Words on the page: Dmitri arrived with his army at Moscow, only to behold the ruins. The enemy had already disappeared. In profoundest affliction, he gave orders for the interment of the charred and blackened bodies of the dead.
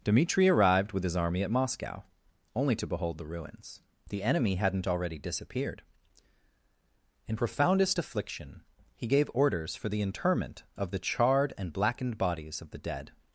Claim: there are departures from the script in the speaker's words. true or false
true